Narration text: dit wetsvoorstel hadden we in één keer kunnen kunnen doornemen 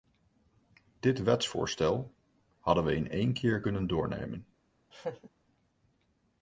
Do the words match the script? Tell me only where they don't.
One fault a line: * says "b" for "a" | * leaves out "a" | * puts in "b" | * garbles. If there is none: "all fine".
* leaves out "kunnen"